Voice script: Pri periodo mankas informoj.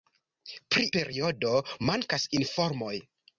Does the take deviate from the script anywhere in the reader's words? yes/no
no